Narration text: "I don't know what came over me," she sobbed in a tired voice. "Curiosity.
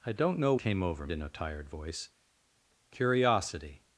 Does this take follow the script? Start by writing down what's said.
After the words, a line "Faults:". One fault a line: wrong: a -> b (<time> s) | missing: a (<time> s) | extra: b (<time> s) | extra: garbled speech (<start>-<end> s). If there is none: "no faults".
"I don't know came over in a tired voice. "Curiosity.
Faults:
missing: what (0.6 s)
missing: me she sobbed (1.1 s)